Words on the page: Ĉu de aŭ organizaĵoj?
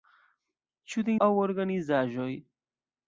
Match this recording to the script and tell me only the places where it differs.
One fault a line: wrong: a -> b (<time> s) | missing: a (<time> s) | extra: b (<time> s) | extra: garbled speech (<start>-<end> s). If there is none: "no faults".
no faults